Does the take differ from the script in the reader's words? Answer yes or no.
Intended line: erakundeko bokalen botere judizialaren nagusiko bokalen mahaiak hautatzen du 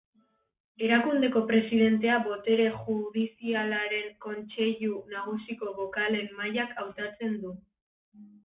yes